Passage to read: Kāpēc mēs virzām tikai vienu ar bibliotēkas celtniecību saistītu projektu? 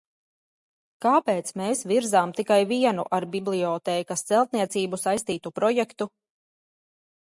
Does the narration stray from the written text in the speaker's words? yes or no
no